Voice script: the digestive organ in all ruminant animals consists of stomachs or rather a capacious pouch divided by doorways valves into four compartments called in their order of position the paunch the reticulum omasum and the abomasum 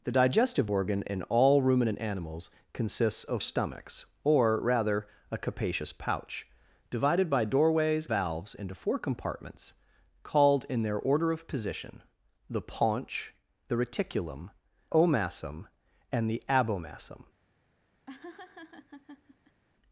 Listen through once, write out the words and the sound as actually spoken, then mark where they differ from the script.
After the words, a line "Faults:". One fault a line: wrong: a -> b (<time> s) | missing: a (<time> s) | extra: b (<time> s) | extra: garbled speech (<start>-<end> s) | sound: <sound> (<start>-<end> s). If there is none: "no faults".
the digestive organ in all ruminant animals consists of stomachs or rather a capacious pouch divided by doorways valves into four compartments called in their order of position the paunch the reticulum omasum and the abomasum
Faults:
sound: laugh (18.1-19.6 s)